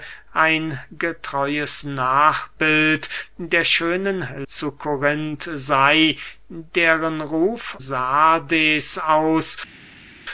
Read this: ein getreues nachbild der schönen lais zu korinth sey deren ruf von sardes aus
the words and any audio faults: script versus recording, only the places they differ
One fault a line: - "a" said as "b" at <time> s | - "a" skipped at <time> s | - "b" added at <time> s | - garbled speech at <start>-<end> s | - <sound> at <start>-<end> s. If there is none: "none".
- "lais" skipped at 4.3 s
- "von" skipped at 7.8 s